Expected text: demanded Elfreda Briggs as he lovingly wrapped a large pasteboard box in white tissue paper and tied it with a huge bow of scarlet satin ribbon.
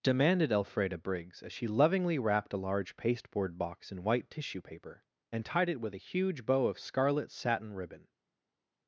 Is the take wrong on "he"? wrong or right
wrong